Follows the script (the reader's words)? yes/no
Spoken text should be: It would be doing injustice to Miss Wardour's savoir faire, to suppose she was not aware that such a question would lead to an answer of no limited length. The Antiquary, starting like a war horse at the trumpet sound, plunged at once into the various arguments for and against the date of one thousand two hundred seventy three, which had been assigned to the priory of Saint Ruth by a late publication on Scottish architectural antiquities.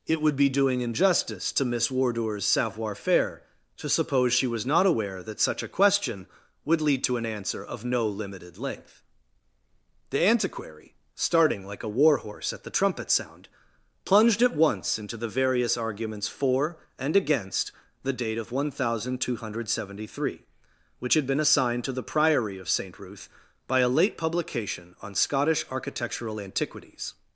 yes